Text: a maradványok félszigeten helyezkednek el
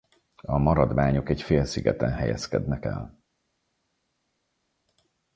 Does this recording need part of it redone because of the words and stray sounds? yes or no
yes